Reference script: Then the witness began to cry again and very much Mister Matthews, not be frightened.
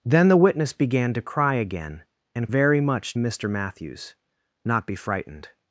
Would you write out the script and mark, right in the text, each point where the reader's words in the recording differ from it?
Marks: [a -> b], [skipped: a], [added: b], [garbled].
Then the witness began to cry again and very much Mister Matthews, not be frightened.